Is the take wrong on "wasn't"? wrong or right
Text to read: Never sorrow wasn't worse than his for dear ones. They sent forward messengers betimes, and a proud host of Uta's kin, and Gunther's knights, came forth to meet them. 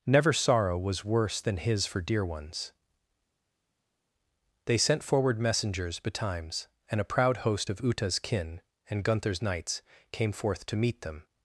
wrong